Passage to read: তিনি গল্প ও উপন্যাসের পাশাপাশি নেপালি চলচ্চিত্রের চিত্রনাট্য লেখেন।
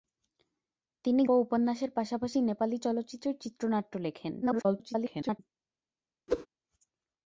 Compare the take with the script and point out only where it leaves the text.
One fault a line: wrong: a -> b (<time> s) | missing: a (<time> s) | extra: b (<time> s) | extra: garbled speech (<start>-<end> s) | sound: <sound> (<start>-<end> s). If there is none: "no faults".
missing: গল্প (1.2 s)
extra: garbled speech (4.4-5.4 s)
sound: whoosh (6.3-6.5 s)